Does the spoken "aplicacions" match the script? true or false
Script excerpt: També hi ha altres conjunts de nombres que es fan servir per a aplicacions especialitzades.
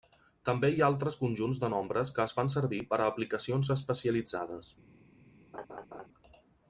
true